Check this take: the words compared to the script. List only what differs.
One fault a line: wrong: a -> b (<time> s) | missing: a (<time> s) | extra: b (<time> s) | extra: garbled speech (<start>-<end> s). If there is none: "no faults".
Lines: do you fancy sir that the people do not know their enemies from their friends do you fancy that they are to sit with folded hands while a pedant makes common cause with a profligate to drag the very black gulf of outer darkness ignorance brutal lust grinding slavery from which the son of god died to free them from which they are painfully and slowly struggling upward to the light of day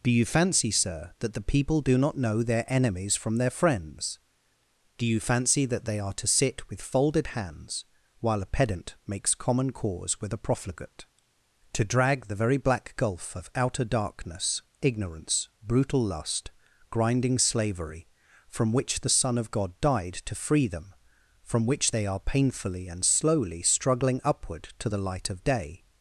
no faults